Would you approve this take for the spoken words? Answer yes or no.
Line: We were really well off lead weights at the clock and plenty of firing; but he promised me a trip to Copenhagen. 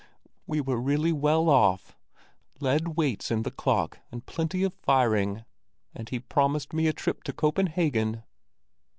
no